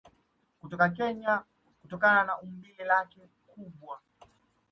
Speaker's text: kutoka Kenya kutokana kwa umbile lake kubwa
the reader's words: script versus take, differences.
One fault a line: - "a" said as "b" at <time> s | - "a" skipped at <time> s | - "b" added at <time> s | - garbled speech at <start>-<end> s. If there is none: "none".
- "kwa" said as "na" at 2.2 s